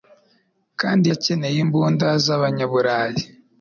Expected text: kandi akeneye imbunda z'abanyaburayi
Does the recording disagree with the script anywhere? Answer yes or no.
no